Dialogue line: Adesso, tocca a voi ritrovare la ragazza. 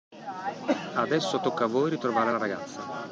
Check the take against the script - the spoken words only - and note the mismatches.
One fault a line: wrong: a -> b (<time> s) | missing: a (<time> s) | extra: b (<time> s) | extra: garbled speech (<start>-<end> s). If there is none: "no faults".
no faults